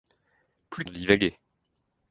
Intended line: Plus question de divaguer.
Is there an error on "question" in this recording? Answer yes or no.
yes